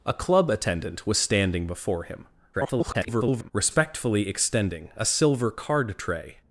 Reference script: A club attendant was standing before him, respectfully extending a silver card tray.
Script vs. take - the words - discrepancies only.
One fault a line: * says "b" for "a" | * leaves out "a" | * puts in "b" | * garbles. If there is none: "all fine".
* garbles